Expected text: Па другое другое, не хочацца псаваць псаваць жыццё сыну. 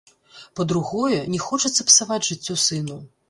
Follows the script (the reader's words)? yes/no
no